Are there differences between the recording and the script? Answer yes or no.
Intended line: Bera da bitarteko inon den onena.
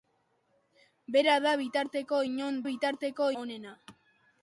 yes